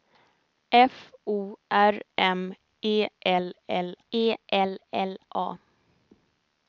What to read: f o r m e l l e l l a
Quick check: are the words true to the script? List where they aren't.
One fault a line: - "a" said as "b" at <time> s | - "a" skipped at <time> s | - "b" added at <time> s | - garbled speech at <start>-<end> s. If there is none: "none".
none